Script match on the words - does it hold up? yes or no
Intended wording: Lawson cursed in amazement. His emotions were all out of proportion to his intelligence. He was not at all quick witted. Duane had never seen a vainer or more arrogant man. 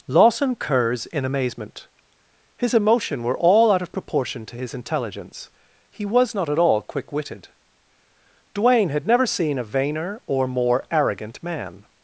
no